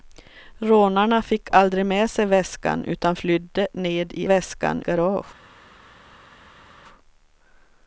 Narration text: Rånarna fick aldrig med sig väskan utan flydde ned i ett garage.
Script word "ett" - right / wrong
wrong